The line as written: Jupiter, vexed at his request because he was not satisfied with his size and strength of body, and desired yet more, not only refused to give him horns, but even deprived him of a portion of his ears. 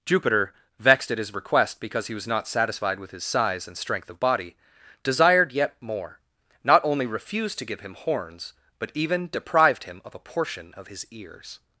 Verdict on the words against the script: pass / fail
fail